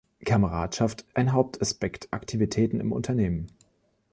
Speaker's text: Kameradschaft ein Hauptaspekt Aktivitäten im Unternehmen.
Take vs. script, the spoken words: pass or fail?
pass